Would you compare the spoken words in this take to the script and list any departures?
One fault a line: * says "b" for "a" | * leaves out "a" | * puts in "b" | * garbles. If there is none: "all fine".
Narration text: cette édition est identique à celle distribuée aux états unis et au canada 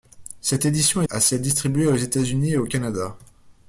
* leaves out "est identique"